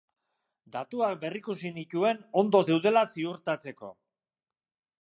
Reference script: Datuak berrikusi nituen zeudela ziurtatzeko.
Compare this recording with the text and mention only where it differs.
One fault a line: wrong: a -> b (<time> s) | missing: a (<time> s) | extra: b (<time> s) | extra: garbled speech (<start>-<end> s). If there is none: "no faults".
extra: ondo (2.4 s)